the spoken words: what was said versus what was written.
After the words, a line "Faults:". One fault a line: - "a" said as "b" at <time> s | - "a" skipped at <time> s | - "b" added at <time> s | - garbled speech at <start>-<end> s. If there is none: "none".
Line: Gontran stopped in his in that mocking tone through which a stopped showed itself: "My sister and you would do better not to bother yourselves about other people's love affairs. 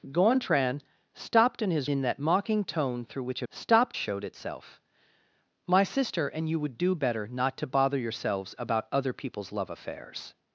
Gontran stopped in his in that mocking tone through which a stopped showed itself: "My sister and you would do better not to bother yourselves about other people's love affairs.
Faults:
none